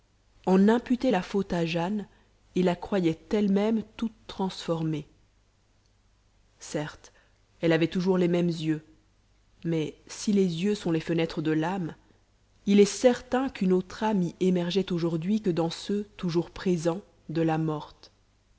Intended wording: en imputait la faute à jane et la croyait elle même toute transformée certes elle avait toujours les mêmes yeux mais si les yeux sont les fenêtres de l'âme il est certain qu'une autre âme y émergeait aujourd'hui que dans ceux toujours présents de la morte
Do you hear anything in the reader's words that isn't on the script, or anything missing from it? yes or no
no